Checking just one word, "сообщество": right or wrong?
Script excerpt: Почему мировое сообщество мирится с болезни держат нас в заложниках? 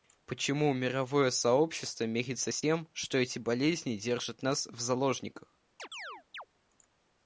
right